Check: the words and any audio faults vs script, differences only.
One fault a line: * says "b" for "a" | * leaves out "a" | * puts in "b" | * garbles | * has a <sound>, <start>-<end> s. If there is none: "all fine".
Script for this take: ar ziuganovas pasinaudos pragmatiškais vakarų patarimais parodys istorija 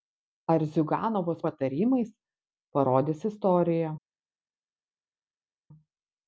* leaves out "pasinaudos pragmatiškais vakarų"